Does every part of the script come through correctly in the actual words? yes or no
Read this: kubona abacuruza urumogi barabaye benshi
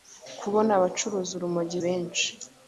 no